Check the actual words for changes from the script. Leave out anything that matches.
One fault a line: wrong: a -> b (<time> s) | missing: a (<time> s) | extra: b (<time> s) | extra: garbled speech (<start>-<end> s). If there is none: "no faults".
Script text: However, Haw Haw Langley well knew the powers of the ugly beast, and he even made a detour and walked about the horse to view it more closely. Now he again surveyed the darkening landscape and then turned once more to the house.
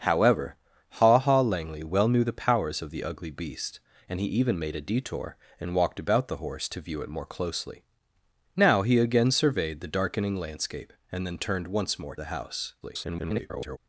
missing: to (12.2 s)
extra: garbled speech (12.8-13.8 s)